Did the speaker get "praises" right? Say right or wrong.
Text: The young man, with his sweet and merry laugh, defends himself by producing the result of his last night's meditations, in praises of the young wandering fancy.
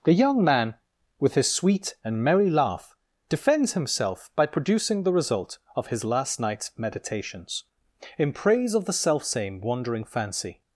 wrong